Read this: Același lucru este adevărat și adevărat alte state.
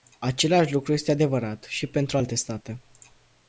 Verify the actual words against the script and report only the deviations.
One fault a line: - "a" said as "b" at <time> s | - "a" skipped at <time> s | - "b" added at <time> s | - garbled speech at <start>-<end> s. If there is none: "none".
- "adevărat" said as "pentru" at 1.9 s